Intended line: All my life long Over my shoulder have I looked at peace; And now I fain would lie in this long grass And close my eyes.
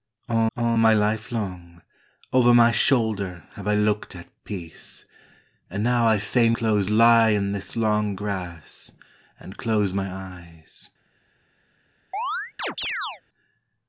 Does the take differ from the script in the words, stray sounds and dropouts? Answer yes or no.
yes